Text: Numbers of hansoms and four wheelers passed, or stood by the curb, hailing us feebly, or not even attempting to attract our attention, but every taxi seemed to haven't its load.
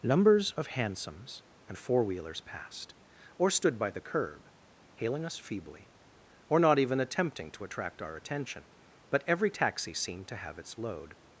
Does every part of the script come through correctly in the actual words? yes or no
no